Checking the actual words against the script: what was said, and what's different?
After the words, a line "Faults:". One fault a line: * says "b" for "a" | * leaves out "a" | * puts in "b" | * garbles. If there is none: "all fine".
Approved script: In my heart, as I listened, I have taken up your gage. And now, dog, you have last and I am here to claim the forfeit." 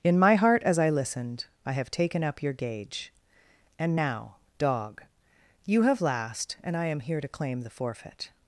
In my heart, as I listened, I have taken up your gage. And now, dog, you have last and I am here to claim the forfeit."
Faults:
all fine